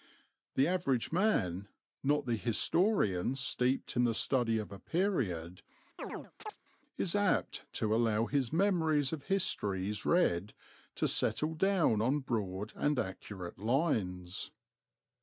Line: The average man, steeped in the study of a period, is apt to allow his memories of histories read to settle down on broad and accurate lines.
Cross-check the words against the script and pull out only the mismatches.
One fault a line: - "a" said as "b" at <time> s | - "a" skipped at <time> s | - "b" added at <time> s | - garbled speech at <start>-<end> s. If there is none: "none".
- "not the historian" added at 2.0 s